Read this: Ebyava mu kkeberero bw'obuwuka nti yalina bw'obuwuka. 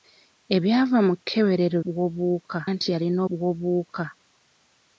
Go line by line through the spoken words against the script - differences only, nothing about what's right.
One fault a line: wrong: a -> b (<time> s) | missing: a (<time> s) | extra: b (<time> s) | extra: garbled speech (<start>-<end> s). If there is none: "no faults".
no faults